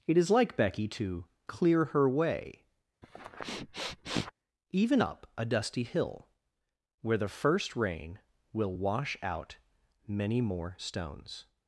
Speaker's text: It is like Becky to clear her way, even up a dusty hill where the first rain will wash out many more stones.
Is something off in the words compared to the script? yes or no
no